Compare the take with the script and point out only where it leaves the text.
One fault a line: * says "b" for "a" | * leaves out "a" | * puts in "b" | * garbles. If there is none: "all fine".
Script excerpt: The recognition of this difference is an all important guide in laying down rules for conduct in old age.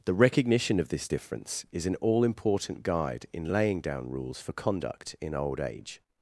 all fine